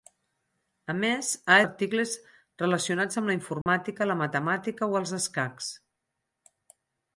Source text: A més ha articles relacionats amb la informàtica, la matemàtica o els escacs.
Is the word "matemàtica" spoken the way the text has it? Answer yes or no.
yes